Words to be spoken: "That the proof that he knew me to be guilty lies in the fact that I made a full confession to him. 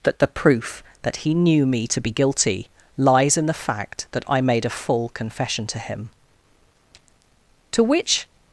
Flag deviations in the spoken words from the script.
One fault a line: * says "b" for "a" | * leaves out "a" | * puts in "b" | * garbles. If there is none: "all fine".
* puts in "To which"